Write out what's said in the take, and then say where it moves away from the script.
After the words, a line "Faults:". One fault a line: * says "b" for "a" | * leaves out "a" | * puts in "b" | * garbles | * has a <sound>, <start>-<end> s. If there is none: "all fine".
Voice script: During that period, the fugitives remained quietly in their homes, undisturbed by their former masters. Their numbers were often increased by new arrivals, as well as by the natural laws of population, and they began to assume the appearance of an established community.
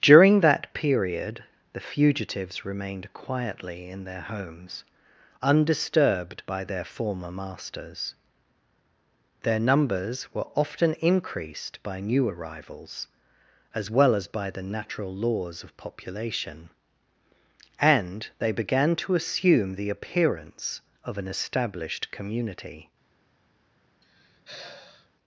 During that period, the fugitives remained quietly in their homes, undisturbed by their former masters. Their numbers were often increased by new arrivals, as well as by the natural laws of population, and they began to assume the appearance of an established community.
Faults:
* has a sigh, 24.0-25.1 s